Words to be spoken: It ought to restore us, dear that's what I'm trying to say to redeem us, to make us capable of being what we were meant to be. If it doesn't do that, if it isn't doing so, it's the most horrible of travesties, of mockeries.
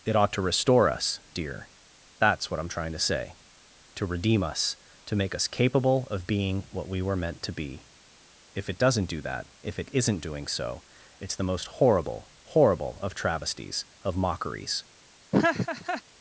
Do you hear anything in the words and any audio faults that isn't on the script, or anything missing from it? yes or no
yes